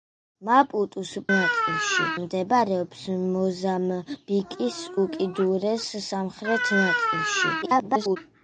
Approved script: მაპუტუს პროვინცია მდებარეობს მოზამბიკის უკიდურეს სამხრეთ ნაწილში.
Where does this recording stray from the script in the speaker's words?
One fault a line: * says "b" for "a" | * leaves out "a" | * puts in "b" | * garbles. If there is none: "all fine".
* says "ნაწილში" for "პროვინცია"
* garbles